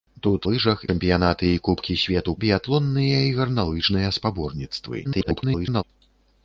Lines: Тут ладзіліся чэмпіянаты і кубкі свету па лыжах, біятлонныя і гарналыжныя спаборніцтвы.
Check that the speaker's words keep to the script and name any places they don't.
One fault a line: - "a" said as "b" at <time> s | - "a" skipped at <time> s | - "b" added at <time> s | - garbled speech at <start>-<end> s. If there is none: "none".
- "ладзіліся" said as "лыжах" at 0.5 s
- "па лыжах" skipped at 2.3 s
- garbled speech at 5.0-5.8 s